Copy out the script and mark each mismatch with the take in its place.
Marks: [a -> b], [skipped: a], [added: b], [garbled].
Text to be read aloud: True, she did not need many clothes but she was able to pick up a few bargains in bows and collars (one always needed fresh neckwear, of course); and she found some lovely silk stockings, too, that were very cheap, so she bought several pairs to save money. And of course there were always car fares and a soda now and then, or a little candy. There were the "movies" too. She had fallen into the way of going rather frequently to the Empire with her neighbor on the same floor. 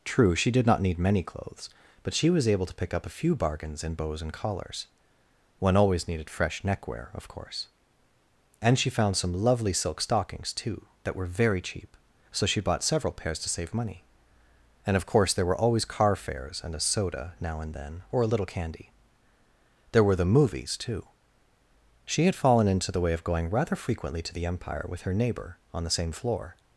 True, she did not need many clothes but she was able to pick up a few bargains in bows and collars (one always needed fresh neckwear, of course); and she found some lovely silk stockings, too, that were very cheap, so she bought several pairs to save money. And of course there were always car fares and a soda now and then, or a little candy. There were the "movies" too. She had fallen into the way of going rather frequently to the Empire with her neighbor on the same floor.